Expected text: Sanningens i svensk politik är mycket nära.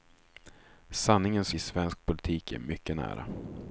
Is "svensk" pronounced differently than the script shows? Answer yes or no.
no